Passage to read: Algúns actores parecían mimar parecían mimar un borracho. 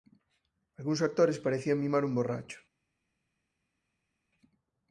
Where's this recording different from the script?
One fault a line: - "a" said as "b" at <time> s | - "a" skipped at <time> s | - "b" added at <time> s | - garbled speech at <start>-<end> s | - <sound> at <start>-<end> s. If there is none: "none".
- "parecían mimar" skipped at 2.0 s